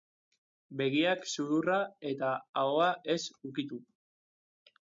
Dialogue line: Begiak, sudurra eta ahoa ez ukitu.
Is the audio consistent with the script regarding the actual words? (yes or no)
yes